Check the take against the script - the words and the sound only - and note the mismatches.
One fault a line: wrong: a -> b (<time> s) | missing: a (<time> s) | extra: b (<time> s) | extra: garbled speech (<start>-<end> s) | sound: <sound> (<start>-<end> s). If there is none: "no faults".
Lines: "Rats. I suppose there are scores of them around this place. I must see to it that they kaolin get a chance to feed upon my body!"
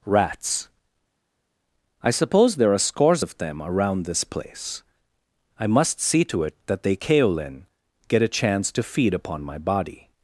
no faults